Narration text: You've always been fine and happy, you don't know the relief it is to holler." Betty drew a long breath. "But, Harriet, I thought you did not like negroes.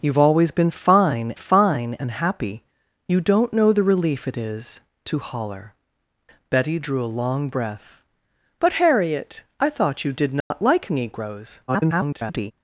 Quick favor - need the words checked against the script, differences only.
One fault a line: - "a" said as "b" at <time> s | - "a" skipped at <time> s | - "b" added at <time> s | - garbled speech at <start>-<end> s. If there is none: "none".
- "fine" added at 1.4 s
- garbled speech at 11.7-12.5 s